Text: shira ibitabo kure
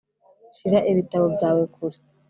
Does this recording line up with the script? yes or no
no